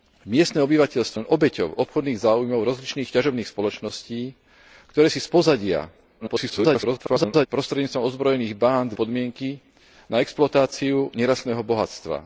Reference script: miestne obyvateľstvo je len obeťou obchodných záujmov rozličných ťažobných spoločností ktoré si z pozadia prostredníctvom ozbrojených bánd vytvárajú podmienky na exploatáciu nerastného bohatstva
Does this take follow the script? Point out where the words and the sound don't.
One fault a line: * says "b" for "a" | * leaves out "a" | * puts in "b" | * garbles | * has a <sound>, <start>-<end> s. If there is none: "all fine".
* leaves out "je"
* garbles
* leaves out "vytvárajú"